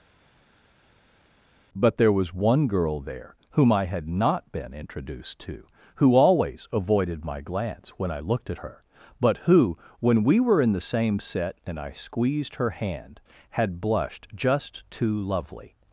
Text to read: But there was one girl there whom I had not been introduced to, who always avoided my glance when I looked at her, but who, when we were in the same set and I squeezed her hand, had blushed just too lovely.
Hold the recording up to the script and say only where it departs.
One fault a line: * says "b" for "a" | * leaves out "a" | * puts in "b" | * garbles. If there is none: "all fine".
all fine